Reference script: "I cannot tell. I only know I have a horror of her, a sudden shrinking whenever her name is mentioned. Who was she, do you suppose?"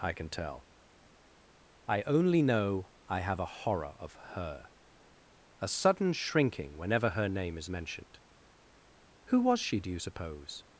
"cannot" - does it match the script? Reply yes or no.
no